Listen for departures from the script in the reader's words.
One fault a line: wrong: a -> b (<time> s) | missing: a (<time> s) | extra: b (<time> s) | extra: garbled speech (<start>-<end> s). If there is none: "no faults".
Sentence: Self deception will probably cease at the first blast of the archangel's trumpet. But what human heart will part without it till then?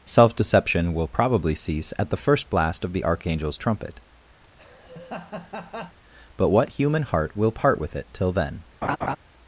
wrong: without -> with (7.8 s)